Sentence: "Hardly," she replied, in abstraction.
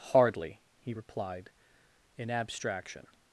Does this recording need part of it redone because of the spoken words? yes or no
yes